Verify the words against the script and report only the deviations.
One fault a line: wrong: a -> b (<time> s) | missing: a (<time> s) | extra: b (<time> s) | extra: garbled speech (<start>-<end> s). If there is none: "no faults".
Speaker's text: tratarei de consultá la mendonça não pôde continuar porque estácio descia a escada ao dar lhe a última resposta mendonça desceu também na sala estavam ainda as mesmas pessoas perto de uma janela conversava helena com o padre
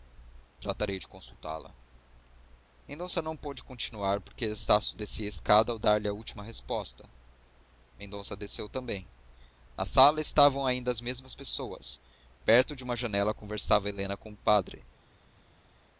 no faults